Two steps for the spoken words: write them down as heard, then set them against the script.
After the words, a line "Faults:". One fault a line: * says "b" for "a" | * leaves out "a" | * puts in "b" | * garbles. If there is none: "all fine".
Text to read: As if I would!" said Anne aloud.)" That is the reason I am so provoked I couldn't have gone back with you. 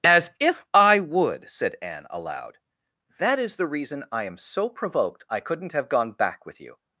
As if I would!" said Anne aloud.)" That is the reason I am so provoked I couldn't have gone back with you.
Faults:
all fine